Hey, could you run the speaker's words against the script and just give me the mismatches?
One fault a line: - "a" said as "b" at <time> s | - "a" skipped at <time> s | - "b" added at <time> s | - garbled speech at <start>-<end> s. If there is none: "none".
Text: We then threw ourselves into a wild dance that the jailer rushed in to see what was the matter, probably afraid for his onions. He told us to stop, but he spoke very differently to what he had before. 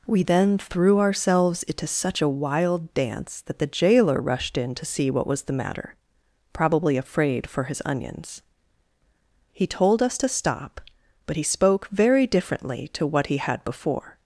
- "such" added at 1.9 s